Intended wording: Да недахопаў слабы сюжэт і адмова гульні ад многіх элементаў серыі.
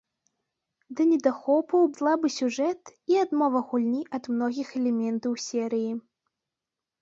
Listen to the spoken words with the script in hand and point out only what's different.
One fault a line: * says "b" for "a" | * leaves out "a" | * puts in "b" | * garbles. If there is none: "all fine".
all fine